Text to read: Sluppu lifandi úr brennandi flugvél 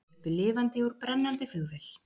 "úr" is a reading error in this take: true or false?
false